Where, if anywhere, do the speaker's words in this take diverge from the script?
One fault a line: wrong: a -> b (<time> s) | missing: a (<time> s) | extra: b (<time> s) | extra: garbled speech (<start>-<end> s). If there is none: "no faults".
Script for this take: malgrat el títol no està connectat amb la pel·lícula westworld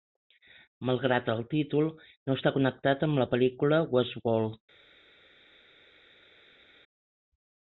no faults